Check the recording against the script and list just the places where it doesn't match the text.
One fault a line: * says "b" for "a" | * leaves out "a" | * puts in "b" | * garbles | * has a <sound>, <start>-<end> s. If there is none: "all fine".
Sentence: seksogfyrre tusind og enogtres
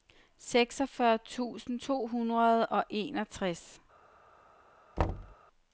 * puts in "to hundrede"
* has a thud, 5.0-5.4 s